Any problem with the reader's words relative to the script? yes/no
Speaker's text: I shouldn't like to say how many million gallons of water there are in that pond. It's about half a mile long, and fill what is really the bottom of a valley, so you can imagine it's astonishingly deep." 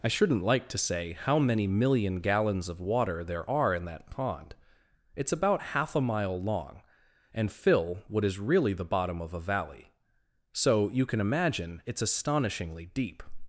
no